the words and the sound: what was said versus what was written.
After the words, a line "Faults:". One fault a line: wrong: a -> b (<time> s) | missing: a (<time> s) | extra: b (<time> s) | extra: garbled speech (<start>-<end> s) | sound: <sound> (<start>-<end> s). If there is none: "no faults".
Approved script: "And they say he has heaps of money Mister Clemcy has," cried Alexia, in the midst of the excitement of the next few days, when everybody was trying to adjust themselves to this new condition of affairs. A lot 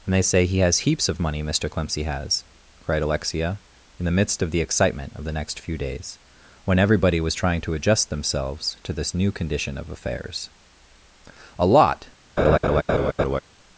"And they say he has heaps of money Mister Clemcy has," cried Alexia, in the midst of the excitement of the next few days, when everybody was trying to adjust themselves to this new condition of affairs. A lot
Faults:
sound: laugh (12.4-13.4 s)